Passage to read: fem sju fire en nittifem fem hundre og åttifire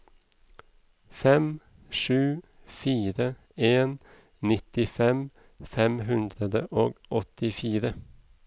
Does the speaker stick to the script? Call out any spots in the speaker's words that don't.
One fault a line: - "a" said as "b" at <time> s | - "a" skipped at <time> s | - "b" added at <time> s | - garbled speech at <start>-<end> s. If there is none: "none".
none